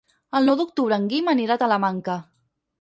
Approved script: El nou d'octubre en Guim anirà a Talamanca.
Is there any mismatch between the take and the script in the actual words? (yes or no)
no